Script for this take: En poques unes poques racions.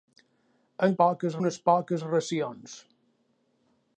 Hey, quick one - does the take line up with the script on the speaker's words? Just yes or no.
yes